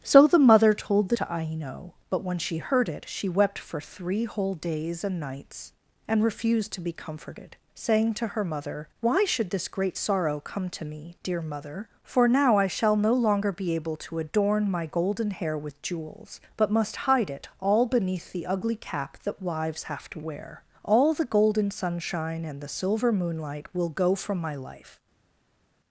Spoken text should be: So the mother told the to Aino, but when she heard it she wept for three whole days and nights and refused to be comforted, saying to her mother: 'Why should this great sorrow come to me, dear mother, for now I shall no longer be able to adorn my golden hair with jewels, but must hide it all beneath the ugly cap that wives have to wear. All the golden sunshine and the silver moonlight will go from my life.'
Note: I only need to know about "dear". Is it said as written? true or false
true